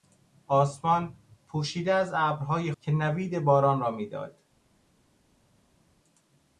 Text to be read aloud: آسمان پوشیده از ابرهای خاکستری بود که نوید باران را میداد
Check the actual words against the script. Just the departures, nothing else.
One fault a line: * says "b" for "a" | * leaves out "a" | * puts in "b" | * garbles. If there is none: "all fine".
* leaves out "خاکستری بود"